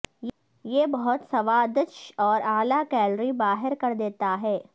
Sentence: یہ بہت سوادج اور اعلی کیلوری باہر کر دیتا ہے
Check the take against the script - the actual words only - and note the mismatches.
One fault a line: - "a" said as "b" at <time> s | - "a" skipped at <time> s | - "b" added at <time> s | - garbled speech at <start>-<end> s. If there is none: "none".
none